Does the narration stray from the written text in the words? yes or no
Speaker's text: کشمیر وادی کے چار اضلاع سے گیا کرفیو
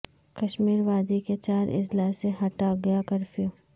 yes